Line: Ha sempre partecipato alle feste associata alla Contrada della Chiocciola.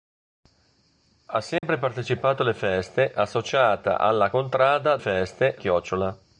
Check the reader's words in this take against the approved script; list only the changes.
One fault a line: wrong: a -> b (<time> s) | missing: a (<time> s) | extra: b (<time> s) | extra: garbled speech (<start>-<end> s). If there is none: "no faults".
wrong: della -> feste (5.0 s)